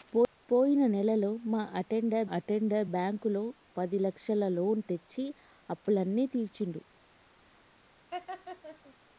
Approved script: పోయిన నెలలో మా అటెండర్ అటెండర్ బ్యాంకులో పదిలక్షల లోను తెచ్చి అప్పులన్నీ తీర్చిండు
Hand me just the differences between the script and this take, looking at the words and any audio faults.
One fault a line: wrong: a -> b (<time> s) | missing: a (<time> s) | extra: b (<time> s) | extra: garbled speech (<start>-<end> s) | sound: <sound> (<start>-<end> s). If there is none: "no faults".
sound: laugh (8.1-9.0 s)